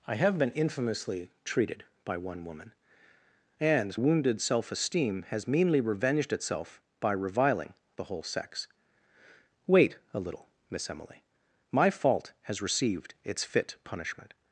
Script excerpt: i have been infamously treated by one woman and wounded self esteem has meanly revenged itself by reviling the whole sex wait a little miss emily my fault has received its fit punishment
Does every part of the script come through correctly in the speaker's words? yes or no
yes